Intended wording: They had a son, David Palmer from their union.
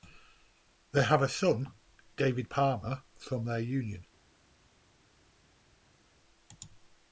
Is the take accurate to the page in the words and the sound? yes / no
no